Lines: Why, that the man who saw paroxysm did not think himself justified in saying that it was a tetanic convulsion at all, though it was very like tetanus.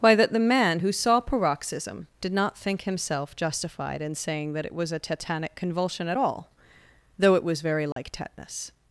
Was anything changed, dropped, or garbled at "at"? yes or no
no